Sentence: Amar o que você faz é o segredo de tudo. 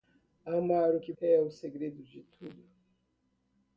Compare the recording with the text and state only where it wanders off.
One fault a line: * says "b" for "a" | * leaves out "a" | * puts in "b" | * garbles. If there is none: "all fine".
* leaves out "você faz"